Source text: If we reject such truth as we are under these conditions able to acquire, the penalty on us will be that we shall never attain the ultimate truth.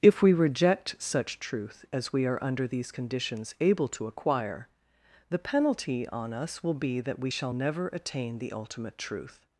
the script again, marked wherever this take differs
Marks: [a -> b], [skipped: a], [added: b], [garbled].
If we reject such truth as we are under these conditions able to acquire, the penalty on us will be that we shall never attain the ultimate truth.